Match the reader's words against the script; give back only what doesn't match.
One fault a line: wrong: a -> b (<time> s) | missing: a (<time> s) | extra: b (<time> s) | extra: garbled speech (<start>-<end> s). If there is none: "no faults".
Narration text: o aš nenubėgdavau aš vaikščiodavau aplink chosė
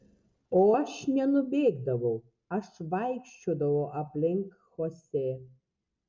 no faults